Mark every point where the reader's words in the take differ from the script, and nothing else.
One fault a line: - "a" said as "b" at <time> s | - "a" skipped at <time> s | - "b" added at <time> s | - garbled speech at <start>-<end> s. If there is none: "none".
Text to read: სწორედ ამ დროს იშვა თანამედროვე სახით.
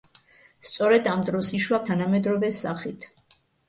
none